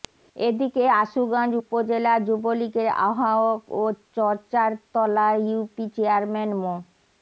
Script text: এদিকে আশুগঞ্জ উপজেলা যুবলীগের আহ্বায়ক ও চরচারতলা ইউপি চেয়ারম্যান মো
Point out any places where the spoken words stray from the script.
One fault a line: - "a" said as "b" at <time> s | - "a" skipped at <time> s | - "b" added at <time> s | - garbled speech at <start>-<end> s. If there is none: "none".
none